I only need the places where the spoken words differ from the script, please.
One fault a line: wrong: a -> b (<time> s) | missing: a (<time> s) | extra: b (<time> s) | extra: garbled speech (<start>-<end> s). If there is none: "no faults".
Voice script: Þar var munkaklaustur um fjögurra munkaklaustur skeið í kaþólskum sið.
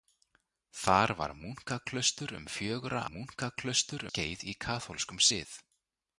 no faults